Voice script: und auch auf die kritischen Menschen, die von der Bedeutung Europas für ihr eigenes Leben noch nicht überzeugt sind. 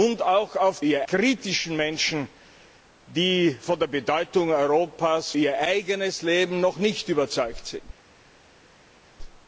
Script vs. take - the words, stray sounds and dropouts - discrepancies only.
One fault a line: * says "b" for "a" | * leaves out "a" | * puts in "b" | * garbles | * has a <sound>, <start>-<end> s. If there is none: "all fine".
* says "ihr" for "die"
* leaves out "für"